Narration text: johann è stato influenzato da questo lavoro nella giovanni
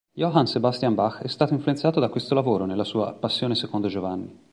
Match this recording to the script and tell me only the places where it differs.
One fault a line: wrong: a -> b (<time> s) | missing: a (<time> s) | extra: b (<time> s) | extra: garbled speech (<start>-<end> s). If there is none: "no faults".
extra: sebastian bach (0.5 s)
extra: sua passione secondo (2.8 s)